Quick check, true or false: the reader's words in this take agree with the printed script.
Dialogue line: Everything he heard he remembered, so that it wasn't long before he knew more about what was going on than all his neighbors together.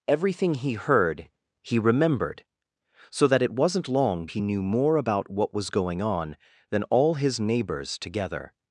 false